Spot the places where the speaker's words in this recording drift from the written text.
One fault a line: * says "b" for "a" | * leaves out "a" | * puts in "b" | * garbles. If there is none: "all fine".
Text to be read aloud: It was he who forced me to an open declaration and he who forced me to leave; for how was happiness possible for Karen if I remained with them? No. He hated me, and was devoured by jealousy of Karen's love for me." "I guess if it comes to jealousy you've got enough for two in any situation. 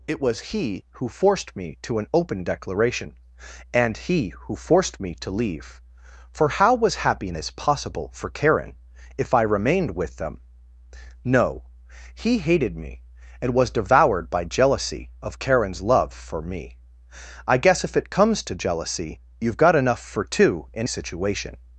* leaves out "any"